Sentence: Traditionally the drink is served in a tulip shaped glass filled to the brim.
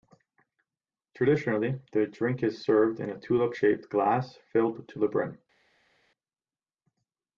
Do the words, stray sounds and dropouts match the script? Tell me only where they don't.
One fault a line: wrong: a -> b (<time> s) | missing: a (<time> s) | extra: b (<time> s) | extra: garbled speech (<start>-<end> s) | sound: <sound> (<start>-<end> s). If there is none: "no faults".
no faults